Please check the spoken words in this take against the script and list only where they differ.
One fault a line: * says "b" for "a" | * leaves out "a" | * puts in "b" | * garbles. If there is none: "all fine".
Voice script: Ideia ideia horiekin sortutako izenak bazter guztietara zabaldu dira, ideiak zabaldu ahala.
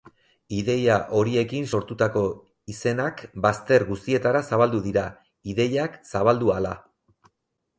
* leaves out "ideia"